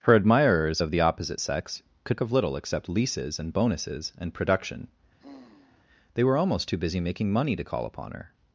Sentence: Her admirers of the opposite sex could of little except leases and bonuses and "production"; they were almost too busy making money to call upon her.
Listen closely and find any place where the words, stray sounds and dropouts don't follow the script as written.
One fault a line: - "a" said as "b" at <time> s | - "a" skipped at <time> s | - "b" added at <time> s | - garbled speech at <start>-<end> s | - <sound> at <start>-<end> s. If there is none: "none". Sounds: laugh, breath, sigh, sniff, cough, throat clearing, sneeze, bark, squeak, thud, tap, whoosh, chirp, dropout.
- sigh at 5.2-5.9 s